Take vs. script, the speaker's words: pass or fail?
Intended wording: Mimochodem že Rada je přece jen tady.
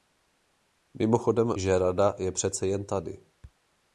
pass